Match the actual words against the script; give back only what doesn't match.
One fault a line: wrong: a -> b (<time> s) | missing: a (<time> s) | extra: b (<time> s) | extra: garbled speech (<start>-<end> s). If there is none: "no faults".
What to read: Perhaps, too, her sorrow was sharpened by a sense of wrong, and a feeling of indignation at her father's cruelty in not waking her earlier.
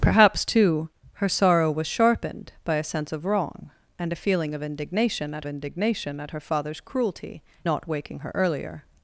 extra: indignation at (5.5 s)
missing: in (7.4 s)